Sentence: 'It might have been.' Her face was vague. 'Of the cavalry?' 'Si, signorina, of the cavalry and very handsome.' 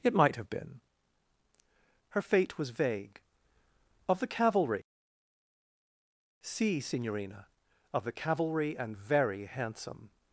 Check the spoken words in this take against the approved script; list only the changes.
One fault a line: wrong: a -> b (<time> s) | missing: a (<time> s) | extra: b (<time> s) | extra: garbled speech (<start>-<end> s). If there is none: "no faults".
wrong: face -> fate (2.2 s)